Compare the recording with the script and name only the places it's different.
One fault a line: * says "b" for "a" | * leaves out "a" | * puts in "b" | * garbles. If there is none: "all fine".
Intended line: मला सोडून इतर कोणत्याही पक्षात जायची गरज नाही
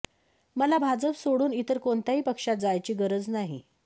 * puts in "भाजप"